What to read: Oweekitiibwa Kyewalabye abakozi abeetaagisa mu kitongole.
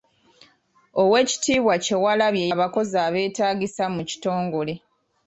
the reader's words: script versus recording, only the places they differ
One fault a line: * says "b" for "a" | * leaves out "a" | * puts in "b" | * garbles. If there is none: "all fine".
all fine